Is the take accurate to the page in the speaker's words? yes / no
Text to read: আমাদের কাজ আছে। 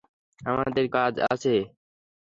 yes